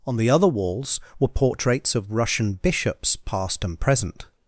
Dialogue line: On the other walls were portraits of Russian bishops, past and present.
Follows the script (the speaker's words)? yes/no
yes